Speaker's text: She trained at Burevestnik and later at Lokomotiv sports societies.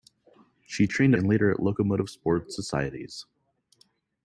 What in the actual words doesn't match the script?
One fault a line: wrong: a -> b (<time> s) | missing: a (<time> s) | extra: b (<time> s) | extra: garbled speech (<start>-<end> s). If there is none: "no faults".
missing: at Burevestnik (1.1 s)